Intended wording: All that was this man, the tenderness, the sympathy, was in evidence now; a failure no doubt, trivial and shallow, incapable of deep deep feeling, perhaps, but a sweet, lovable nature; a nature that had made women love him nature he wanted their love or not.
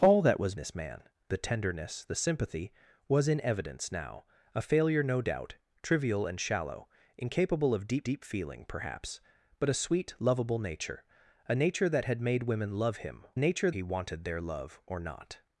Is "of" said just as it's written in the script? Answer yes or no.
yes